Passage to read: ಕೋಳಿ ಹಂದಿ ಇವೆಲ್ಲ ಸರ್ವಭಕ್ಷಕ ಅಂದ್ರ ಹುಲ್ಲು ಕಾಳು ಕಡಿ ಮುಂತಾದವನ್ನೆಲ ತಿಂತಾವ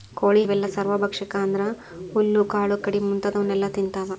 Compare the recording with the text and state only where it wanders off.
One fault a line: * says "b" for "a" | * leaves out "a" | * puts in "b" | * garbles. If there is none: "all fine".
* leaves out "ಹಂದಿ"